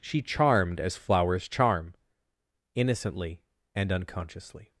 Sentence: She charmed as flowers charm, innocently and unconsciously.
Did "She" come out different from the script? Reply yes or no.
no